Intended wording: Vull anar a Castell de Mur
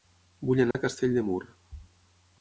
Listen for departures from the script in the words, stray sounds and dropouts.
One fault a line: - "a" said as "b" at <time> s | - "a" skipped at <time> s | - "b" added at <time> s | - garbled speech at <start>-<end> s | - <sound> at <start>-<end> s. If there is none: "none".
- dropout at 0.7-0.7 s